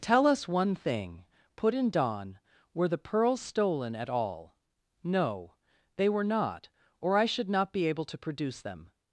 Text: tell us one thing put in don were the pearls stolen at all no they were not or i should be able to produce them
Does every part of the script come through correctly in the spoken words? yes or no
no